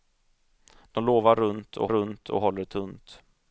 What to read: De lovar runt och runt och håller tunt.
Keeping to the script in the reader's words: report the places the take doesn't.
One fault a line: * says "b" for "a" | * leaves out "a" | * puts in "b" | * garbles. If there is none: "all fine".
all fine